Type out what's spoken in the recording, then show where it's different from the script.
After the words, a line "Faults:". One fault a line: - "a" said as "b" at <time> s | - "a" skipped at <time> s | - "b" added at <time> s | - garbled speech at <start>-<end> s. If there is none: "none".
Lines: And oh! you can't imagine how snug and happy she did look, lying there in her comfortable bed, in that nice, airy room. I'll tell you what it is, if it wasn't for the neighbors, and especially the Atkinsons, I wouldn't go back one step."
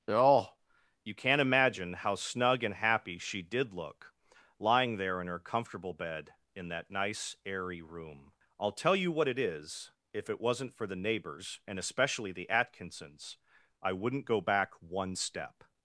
oh! you can't imagine how snug and happy she did look, lying there in her comfortable bed, in that nice, airy room. I'll tell you what it is, if it wasn't for the neighbors, and especially the Atkinsons, I wouldn't go back one step."
Faults:
- "And" skipped at 0.1 s